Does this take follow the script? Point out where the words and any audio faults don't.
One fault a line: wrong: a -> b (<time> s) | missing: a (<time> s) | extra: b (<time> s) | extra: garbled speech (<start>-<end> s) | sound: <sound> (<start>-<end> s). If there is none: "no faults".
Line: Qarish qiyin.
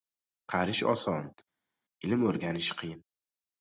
extra: oson ilm o‘rganish (0.9 s)